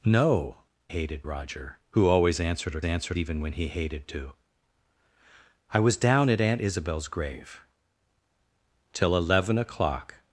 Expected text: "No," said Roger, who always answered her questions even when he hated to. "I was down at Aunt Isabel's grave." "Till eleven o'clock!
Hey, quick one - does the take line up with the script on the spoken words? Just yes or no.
no